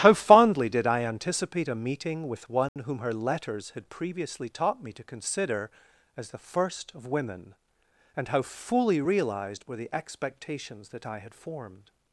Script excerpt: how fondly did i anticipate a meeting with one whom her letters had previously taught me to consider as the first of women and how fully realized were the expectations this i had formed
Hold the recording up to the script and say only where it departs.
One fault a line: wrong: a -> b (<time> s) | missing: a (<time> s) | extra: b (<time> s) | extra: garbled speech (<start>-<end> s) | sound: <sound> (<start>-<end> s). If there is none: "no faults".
sound: dropout (2.7-2.8 s)
wrong: this -> that (10.9 s)